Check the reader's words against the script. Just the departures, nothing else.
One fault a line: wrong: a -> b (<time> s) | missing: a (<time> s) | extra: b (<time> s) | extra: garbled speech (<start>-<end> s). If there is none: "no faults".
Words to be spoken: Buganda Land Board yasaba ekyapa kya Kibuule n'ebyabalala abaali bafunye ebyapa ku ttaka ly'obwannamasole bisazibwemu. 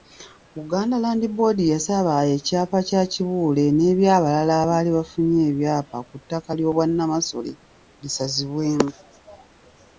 no faults